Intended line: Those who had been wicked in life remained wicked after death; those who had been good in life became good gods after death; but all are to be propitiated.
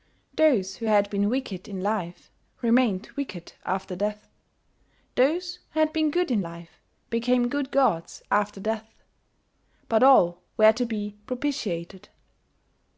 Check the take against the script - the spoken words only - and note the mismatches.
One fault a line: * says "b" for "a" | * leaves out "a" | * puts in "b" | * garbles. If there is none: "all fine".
* says "were" for "are"